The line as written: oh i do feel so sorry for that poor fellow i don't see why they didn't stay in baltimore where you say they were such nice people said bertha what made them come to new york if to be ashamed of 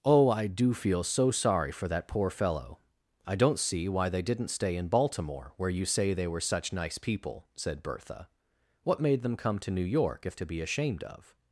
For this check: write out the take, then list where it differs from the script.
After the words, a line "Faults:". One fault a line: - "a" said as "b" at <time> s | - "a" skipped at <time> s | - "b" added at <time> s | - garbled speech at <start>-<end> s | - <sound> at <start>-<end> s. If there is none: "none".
oh i do feel so sorry for that poor fellow i don't see why they didn't stay in baltimore where you say they were such nice people said bertha what made them come to new york if to be ashamed of
Faults:
none